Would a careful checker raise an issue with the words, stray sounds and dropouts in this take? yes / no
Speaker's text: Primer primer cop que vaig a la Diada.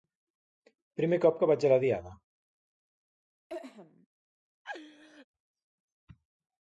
yes